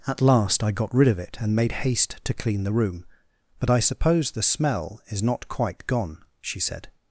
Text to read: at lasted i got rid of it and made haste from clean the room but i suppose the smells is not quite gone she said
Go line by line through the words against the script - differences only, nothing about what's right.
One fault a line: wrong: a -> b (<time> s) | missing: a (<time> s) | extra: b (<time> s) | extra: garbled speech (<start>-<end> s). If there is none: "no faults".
wrong: lasted -> last (0.2 s)
wrong: from -> to (2.2 s)
wrong: smells -> smell (4.4 s)